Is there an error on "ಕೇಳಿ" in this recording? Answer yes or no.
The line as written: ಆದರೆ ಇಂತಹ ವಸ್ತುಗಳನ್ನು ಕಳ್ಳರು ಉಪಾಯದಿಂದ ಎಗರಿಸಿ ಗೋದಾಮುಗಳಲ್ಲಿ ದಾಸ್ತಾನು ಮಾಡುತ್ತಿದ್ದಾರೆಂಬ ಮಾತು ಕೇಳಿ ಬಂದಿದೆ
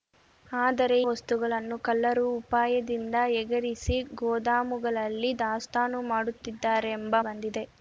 yes